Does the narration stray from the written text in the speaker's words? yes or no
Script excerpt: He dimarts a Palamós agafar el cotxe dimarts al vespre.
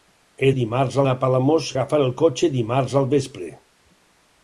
no